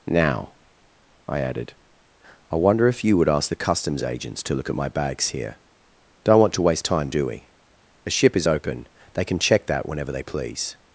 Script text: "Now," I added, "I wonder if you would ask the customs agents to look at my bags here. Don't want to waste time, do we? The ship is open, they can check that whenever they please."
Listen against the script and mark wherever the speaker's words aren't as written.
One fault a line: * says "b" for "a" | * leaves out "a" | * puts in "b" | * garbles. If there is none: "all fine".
* says "A" for "The"